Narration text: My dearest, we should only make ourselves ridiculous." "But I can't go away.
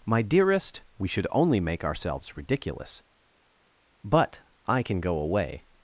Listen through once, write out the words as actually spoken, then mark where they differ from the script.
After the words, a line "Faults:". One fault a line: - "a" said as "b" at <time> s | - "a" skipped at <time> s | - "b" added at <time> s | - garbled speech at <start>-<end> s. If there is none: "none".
My dearest, we should only make ourselves ridiculous." "But I can go away.
Faults:
- "can't" said as "can" at 4.8 s